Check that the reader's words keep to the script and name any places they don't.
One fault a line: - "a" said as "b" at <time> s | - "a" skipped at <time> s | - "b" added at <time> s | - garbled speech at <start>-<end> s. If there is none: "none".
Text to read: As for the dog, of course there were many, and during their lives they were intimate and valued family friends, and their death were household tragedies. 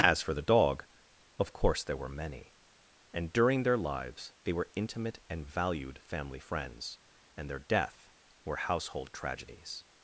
none